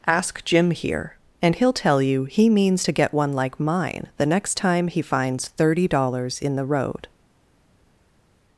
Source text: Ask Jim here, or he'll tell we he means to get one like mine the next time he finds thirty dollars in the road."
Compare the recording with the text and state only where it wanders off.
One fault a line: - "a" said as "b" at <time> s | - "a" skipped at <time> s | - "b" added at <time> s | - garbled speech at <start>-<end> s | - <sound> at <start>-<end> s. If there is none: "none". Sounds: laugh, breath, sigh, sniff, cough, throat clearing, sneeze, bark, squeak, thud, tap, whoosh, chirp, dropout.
- "or" said as "and" at 1.4 s
- "we" said as "you" at 2.0 s